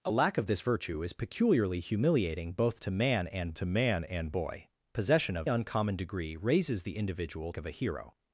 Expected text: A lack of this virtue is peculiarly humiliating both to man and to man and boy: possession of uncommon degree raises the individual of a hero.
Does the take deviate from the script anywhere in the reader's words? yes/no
no